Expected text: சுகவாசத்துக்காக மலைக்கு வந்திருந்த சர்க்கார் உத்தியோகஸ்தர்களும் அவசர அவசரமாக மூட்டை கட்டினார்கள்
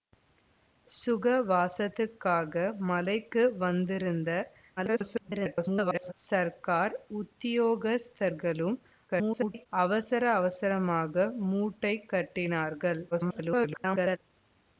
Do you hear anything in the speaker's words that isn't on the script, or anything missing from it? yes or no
yes